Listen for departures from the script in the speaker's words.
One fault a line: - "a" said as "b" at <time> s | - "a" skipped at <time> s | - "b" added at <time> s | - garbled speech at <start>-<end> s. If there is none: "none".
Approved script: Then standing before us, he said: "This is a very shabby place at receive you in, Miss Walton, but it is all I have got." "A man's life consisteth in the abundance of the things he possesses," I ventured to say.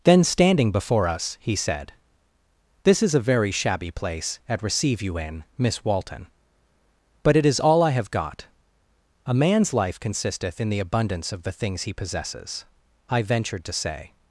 none